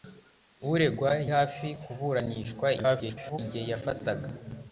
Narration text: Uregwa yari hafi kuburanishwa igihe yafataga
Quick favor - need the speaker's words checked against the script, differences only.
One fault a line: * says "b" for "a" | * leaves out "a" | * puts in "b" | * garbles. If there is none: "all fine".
* leaves out "yari"
* garbles